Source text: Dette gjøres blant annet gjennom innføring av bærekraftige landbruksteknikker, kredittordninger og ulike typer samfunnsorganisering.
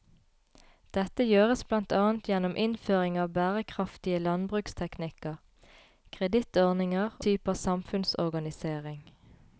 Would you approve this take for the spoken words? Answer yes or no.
no